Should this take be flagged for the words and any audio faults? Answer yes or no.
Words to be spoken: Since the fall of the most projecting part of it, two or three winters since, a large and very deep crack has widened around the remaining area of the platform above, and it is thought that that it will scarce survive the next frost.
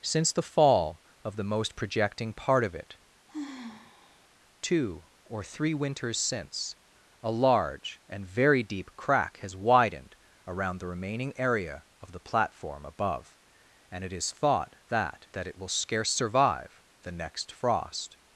yes